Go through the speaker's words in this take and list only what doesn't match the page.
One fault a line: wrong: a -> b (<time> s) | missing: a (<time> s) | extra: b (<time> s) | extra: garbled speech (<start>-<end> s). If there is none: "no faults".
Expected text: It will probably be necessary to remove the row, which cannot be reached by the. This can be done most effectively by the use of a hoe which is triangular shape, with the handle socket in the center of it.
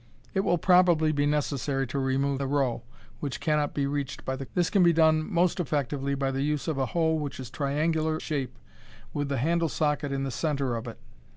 no faults